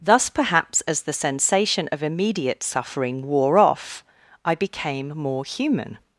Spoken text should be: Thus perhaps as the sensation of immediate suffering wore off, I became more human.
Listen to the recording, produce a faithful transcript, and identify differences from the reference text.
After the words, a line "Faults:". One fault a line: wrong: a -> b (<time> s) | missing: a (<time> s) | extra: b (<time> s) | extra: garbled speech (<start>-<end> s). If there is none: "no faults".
Thus perhaps as the sensation of immediate suffering wore off, I became more human.
Faults:
no faults